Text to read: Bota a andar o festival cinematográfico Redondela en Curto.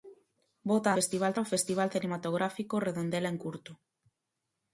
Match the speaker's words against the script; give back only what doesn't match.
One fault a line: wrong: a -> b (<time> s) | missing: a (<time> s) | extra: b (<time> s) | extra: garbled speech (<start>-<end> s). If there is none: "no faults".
wrong: andar -> festival (1.0 s)